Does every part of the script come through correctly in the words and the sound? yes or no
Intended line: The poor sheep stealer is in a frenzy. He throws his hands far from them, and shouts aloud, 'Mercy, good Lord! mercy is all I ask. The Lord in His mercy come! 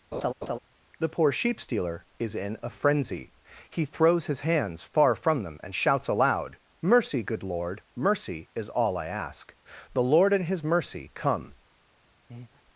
no